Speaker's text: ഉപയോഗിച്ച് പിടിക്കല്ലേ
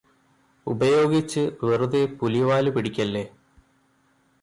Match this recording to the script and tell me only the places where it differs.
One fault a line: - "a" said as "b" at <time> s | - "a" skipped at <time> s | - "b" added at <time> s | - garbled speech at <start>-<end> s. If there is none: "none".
- "വെറുതെ പുലിവാല്" added at 1.6 s